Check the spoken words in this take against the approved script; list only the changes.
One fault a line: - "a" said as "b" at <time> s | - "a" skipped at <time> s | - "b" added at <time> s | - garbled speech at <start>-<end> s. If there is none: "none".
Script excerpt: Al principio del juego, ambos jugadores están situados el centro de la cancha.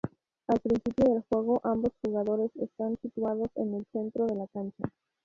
- "en" added at 3.5 s